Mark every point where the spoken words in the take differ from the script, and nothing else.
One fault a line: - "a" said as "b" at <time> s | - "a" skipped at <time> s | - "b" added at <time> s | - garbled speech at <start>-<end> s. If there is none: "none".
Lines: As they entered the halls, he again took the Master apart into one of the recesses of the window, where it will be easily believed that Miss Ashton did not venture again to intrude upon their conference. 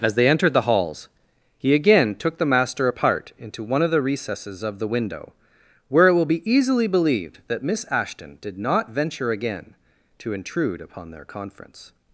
none